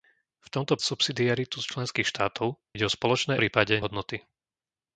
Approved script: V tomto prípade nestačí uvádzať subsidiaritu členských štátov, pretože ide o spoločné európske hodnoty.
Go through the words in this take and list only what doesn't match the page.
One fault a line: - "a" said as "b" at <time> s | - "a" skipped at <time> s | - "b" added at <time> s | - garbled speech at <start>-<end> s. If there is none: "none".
- "prípade nestačí uvádzať" skipped at 0.8 s
- "pretože" skipped at 2.5 s
- "európske" said as "prípade" at 3.4 s